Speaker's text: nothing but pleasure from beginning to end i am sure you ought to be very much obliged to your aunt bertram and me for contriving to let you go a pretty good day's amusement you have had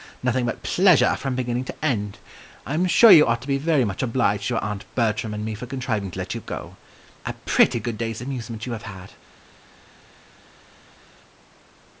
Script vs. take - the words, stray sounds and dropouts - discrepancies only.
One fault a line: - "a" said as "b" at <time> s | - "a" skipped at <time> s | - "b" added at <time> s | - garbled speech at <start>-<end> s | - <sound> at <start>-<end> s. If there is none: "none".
none